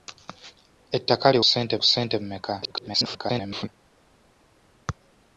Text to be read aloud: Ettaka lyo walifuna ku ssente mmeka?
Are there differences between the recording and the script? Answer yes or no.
yes